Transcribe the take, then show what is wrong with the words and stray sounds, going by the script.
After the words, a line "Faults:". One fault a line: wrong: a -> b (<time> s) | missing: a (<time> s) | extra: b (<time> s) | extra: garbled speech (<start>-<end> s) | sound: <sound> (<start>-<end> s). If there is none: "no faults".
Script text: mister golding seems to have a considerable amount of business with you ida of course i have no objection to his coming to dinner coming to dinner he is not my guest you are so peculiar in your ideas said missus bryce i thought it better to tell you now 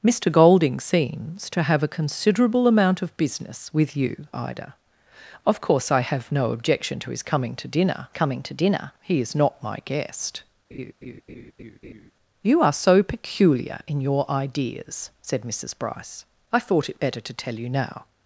mister golding seems to have a considerable amount of business with you ida of course i have no objection to his coming to dinner coming to dinner he is not my guest you are so peculiar in your ideas said missus bryce i thought it better to tell you now
Faults:
sound: laugh (10.7-12.1 s)